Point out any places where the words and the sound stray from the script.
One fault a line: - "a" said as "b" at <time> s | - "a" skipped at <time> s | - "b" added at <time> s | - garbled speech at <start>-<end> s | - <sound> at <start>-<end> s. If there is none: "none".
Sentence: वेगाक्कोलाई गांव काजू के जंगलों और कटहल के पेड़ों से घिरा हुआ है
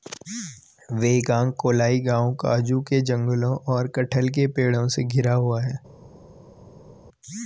none